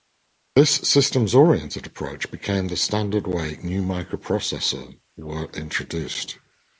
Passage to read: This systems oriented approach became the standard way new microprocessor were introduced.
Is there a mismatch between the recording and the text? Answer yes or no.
no